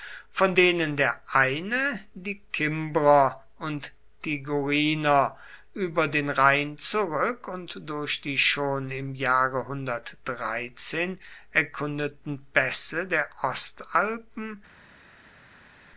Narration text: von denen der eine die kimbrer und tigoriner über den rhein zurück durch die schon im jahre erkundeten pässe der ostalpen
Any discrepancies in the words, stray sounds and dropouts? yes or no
yes